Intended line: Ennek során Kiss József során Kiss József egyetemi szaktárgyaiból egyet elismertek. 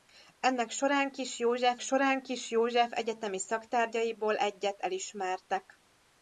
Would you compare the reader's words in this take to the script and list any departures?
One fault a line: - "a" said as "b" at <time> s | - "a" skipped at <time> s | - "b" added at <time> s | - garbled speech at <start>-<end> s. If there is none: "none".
none